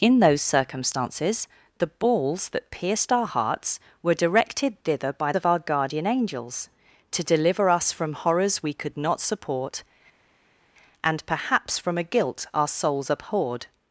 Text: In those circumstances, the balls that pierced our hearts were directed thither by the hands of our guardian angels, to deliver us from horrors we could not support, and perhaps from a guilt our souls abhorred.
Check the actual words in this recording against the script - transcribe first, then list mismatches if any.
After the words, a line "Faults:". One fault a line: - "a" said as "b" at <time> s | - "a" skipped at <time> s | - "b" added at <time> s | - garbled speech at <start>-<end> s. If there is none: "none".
In those circumstances, the balls that pierced our hearts were directed thither by of our guardian angels, to deliver us from horrors we could not support, and perhaps from a guilt our souls abhorred.
Faults:
- "the hands" skipped at 5.3 s